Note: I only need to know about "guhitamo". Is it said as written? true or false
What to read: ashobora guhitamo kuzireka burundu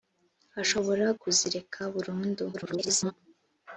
false